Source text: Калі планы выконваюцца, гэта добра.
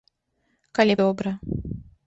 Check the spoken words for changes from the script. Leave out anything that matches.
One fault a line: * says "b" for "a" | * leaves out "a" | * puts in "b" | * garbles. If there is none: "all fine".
* leaves out "планы выконваюцца гэта"